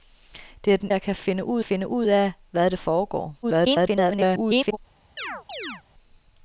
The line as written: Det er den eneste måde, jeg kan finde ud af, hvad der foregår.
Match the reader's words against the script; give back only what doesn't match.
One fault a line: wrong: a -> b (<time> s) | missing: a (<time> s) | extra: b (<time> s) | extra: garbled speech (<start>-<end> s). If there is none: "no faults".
wrong: eneste måde jeg kan -> jeg kan finde ud (0.9 s)
extra: garbled speech (3.4-4.8 s)